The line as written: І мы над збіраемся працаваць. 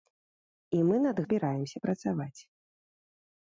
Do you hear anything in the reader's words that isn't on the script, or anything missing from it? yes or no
no